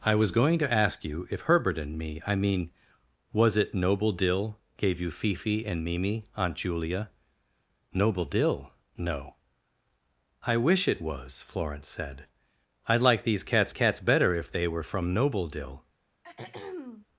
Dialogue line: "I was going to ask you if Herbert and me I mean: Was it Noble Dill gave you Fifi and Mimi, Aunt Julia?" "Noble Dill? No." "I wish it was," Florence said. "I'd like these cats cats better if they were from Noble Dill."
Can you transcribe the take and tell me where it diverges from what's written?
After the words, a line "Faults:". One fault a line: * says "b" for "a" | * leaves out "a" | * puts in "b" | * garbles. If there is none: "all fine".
"I was going to ask you if Herbert and me I mean: Was it Noble Dill gave you Fifi and Mimi, Aunt Julia?" "Noble Dill? No." "I wish it was," Florence said. "I'd like these cats cats better if they were from Noble Dill."
Faults:
all fine